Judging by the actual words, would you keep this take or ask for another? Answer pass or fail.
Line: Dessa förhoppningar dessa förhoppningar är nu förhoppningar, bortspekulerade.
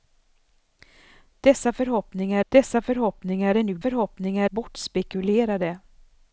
pass